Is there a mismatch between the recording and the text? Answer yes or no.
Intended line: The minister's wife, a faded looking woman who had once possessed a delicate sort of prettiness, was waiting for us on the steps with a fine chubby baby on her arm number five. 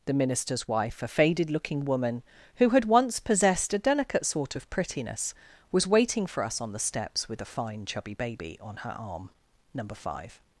no